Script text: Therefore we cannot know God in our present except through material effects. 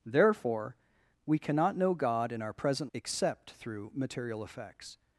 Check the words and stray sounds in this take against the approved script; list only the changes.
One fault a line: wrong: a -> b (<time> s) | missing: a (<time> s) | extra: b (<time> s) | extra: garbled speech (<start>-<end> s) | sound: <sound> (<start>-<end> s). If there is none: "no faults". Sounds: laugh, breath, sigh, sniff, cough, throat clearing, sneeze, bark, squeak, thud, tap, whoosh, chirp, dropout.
no faults